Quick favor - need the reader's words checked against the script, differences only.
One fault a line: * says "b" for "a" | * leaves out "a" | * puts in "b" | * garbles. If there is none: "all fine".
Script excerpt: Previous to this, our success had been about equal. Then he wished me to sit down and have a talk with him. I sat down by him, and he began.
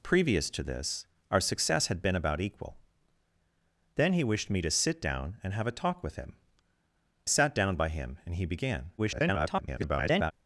* leaves out "I"
* garbles